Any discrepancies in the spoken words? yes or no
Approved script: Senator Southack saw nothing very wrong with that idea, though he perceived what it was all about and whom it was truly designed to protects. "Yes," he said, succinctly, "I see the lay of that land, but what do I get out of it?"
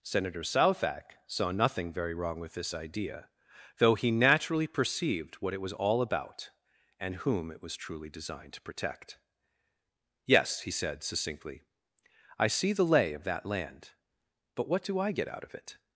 yes